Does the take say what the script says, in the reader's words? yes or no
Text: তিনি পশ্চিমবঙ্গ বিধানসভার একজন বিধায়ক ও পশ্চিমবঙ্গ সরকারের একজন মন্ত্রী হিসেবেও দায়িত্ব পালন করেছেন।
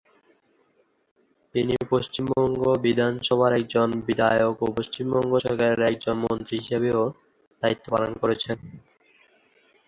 yes